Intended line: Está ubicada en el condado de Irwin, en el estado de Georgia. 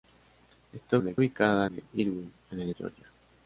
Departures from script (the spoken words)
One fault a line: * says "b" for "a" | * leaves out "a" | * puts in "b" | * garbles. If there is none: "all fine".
* leaves out "ubicada"
* says "ubicada" for "condado"
* leaves out "estado de"